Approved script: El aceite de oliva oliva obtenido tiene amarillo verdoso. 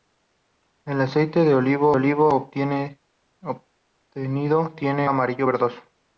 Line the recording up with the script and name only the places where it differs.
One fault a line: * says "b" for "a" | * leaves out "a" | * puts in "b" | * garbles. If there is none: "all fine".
all fine